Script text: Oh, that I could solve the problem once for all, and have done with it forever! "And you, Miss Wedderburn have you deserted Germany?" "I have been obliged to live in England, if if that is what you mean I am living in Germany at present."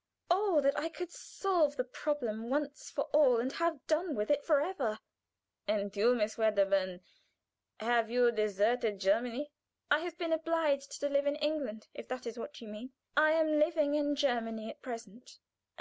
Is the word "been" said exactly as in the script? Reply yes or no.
yes